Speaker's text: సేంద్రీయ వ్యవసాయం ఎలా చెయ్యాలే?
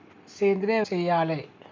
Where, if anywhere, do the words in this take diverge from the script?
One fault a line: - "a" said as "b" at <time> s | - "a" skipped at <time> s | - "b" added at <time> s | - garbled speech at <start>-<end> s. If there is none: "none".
- "వ్యవసాయం ఎలా" skipped at 0.8 s